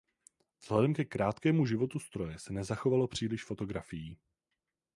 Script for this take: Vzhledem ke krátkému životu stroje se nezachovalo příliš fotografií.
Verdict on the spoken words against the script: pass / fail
pass